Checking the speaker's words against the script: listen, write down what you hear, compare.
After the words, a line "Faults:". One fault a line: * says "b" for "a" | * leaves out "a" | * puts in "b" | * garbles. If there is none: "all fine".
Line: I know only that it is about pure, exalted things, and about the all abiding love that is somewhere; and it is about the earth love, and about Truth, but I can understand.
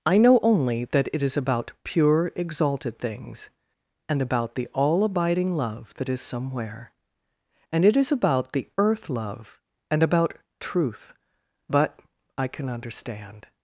I know only that it is about pure, exalted things, and about the all abiding love that is somewhere; and it is about the earth love, and about Truth, but I can understand.
Faults:
all fine